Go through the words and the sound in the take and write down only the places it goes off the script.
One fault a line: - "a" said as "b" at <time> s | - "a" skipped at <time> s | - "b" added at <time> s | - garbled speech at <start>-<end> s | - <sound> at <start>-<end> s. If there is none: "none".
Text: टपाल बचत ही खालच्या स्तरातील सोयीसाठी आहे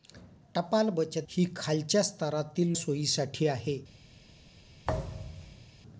- thud at 4.8-5.7 s